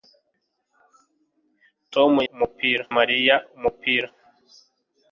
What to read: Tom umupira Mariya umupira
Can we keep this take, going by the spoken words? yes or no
yes